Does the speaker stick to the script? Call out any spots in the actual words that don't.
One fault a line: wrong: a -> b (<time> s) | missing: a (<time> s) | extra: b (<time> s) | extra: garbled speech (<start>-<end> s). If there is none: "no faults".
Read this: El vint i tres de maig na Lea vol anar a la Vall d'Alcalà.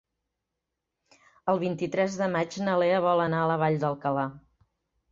no faults